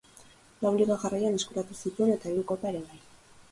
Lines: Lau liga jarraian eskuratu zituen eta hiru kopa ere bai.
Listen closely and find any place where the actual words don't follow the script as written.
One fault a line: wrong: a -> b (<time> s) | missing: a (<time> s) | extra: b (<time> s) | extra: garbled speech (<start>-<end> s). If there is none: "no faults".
no faults